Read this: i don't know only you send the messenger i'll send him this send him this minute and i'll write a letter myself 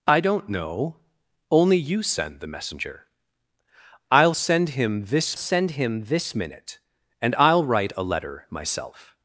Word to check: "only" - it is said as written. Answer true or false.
true